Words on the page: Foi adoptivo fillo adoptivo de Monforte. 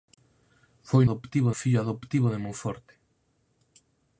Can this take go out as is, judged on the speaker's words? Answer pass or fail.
pass